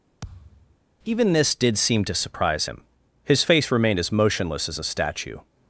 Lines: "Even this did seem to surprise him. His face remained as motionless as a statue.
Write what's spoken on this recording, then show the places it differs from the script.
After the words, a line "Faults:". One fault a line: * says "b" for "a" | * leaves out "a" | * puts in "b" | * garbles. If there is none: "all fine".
"Even this did seem to surprise him. His face remained as motionless as a statue.
Faults:
all fine